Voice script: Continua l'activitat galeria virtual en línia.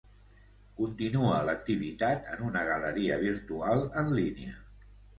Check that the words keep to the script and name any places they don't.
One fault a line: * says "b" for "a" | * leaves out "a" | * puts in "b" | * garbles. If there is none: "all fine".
* puts in "en una"